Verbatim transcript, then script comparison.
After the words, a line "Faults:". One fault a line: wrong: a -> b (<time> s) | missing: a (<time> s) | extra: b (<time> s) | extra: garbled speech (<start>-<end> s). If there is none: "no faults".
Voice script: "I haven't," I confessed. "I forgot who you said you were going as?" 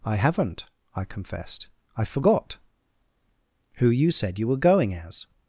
"I haven't," I confessed. "I forgot who you said you were going as?"
Faults:
no faults